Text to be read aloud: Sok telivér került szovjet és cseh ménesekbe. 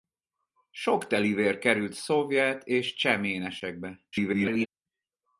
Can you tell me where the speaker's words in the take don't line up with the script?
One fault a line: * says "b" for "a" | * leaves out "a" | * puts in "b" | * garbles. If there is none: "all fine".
* garbles